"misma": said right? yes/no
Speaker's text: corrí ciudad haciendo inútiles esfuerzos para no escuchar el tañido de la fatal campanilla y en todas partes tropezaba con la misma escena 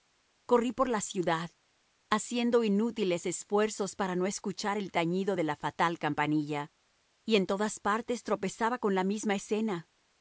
yes